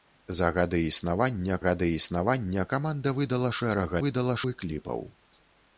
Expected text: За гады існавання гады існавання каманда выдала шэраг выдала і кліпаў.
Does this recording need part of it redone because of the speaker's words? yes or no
no